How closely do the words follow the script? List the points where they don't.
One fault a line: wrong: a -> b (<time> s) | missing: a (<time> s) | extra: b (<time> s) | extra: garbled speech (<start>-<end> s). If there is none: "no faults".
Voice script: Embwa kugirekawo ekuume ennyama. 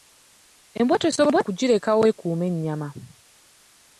no faults